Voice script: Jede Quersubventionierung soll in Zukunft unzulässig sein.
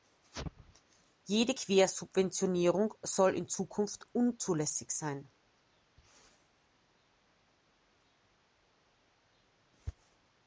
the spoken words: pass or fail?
pass